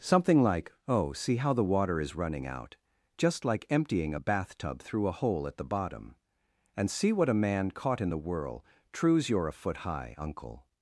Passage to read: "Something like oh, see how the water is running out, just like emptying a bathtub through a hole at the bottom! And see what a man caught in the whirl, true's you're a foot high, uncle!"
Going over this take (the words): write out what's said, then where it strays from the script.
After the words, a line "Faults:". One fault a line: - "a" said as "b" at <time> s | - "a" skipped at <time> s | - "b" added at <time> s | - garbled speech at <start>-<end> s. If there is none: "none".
"Something like oh, see how the water is running out, just like emptying a bathtub through a hole at the bottom! And see what a man caught in the whirl, true's you're a foot high, uncle!"
Faults:
none